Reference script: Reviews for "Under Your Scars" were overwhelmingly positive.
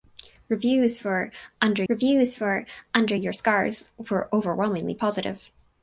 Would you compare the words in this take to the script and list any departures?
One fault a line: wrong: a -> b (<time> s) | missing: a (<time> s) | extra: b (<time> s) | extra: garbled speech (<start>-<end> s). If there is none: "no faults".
extra: reviews for Under (1.9 s)